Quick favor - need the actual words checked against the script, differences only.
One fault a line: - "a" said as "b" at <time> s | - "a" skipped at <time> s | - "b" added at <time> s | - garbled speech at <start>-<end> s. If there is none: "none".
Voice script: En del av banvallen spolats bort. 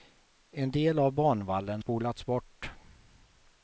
none